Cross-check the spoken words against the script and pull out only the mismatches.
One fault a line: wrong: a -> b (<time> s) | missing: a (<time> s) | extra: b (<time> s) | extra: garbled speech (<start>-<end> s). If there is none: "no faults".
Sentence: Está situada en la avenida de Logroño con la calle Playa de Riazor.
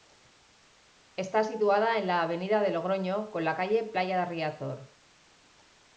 no faults